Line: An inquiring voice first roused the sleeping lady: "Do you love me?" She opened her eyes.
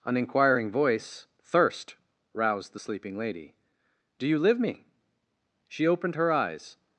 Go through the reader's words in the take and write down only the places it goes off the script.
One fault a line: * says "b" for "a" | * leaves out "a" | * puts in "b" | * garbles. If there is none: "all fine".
* says "thirst" for "first"
* says "live" for "love"